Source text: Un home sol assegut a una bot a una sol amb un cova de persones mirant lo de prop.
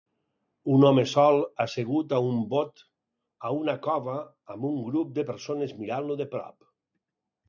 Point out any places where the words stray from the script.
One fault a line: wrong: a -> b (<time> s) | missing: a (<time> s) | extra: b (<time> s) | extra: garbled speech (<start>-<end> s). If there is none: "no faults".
wrong: una -> un (2.3 s)
wrong: sol -> cova (3.9 s)
wrong: cova -> grup (4.9 s)